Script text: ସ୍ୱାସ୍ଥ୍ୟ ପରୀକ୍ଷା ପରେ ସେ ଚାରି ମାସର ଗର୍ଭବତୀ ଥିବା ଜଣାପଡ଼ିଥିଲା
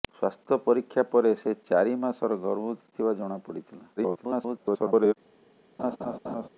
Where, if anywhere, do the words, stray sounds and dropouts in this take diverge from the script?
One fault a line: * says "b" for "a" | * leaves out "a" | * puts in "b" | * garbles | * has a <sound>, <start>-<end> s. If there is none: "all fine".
* garbles
* has a laugh, 5.8-6.5 s